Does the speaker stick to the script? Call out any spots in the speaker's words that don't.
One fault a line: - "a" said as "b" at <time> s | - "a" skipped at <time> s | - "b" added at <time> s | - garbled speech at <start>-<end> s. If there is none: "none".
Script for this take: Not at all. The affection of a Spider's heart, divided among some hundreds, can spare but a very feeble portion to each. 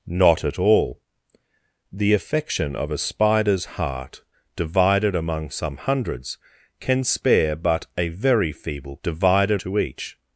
- "portion" said as "divided" at 9.0 s